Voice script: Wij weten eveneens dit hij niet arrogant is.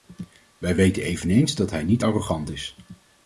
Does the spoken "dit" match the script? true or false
false